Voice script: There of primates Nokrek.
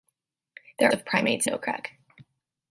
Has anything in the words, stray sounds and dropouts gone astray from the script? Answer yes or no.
no